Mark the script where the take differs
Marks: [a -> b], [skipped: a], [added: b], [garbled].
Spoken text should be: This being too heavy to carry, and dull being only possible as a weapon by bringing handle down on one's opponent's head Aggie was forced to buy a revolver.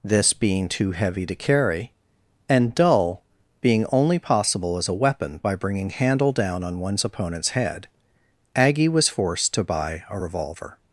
This being too heavy to carry, and dull being only possible as a weapon by bringing handle down on one's opponent's head Aggie was forced to buy a revolver.